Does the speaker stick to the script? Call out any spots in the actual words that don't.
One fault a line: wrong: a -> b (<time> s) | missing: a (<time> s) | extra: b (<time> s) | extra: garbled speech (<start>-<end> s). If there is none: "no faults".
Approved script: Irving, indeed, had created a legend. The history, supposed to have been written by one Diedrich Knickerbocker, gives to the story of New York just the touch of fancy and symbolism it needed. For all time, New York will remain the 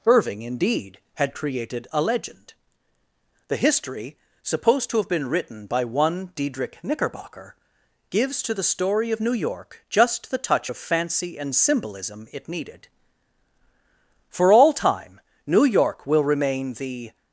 no faults